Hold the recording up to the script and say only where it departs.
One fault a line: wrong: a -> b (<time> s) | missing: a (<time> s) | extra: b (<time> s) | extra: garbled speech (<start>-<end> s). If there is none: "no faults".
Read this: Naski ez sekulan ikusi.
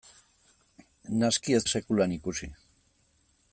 no faults